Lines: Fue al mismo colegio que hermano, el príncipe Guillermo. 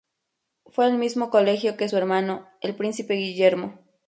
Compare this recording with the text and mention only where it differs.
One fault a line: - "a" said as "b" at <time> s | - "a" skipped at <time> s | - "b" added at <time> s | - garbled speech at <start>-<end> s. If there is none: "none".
- "su" added at 1.8 s